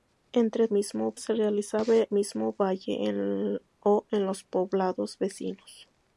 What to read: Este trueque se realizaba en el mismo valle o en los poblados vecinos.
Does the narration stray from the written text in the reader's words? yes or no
yes